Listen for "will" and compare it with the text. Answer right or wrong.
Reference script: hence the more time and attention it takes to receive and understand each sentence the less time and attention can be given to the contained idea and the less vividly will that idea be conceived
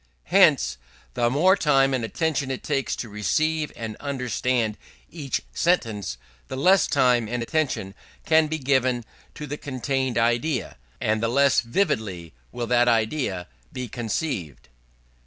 right